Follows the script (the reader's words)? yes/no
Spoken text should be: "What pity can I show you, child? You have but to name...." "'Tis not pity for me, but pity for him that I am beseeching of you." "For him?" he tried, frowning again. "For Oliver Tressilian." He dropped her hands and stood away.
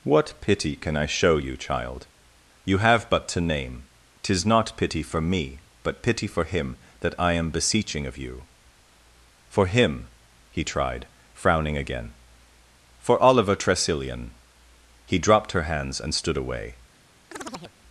yes